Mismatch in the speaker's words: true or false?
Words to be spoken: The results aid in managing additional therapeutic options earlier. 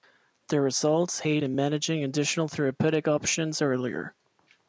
false